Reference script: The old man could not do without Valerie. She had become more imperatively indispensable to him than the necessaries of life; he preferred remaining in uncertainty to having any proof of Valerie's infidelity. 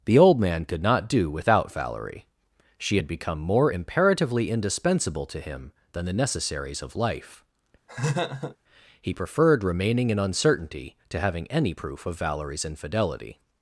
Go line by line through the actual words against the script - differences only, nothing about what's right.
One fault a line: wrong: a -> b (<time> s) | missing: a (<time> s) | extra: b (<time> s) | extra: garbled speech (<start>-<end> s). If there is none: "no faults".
no faults